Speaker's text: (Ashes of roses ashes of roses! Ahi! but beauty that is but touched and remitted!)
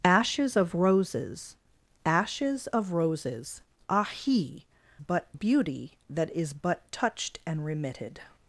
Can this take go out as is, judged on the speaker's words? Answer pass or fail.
pass